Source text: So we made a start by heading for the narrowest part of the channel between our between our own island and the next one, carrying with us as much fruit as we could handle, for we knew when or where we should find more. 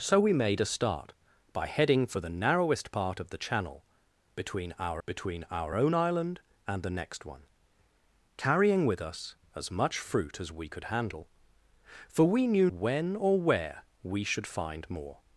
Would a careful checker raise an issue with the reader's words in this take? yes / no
no